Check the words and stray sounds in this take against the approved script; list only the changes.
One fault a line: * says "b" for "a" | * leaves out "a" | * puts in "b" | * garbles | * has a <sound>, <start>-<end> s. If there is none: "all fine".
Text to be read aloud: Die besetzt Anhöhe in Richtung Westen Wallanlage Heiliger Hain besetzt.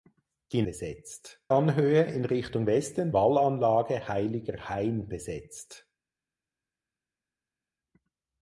all fine